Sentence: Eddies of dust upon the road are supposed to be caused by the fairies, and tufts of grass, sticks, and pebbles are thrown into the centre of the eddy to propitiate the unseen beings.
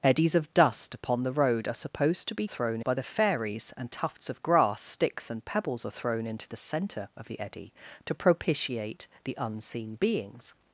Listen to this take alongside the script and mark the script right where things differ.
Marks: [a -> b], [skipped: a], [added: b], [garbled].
Eddies of dust upon the road are supposed to be [caused -> thrown] by the fairies, and tufts of grass, sticks, and pebbles are thrown into the centre of the eddy to propitiate the unseen beings.